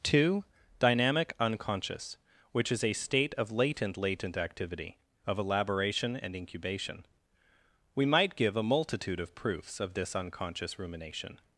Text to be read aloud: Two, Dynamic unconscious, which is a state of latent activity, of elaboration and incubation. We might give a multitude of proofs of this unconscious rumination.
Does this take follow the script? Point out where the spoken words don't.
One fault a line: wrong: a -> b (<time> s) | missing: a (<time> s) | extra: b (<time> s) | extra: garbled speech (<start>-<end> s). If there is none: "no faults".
extra: latent (4.0 s)